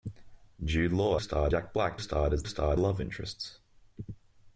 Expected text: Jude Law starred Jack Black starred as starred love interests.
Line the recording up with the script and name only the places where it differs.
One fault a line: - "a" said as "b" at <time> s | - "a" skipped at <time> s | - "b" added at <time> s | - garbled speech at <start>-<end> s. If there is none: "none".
none